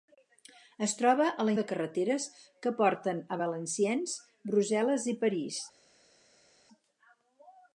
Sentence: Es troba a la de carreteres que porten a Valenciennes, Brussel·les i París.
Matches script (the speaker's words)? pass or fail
pass